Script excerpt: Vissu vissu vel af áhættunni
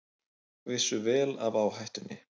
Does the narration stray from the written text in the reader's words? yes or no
yes